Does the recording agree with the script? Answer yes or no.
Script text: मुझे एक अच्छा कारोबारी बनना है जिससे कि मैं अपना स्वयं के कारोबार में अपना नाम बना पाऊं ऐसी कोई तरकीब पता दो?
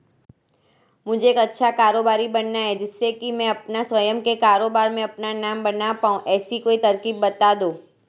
yes